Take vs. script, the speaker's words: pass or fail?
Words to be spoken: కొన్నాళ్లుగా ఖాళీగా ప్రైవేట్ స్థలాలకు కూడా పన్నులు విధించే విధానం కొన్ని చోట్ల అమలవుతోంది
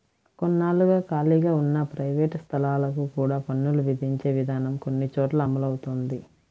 fail